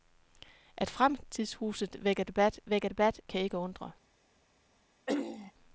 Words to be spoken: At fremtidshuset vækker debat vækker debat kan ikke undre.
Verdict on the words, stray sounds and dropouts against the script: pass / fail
fail